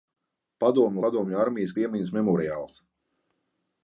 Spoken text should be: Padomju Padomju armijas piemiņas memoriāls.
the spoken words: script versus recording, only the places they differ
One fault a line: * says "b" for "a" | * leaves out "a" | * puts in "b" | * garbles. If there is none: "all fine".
all fine